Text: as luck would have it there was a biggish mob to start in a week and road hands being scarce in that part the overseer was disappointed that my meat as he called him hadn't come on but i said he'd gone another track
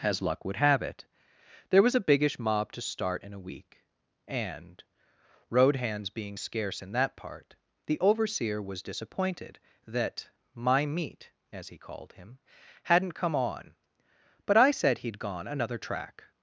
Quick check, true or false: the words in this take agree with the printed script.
true